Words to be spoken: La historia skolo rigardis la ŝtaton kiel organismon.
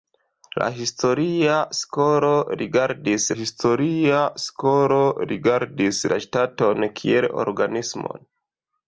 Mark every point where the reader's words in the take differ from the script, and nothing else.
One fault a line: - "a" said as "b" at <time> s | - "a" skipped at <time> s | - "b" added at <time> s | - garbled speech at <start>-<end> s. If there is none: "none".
- "historia skolo rigardis" added at 3.4 s